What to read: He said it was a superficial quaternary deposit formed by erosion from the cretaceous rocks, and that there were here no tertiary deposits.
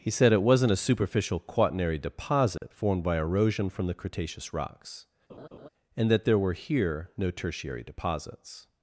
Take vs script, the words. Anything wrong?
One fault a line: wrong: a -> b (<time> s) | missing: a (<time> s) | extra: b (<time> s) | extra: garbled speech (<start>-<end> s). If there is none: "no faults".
wrong: was -> wasn't (0.4 s)